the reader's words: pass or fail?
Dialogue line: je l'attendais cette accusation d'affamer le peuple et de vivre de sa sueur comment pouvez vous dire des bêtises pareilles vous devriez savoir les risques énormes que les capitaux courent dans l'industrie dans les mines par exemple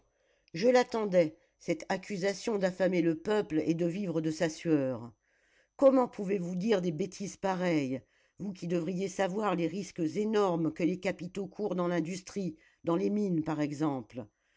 fail